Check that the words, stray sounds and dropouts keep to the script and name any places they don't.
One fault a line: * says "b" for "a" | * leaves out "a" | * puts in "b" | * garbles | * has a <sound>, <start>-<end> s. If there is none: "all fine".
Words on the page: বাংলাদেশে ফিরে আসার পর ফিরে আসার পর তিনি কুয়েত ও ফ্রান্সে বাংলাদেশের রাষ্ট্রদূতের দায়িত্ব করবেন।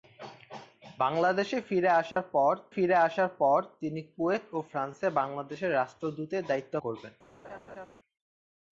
* has a dropout, 2.1-2.2 s
* has a laugh, 7.4-7.9 s